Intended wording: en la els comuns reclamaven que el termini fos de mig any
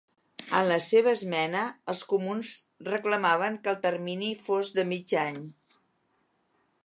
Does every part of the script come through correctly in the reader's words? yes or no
no